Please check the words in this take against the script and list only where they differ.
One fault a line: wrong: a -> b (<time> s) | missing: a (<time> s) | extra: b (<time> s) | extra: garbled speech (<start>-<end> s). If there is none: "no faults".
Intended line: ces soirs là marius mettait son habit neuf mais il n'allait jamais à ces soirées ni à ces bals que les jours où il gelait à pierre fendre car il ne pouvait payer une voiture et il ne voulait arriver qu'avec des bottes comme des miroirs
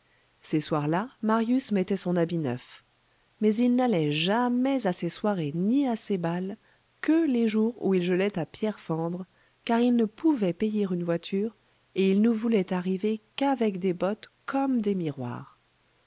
no faults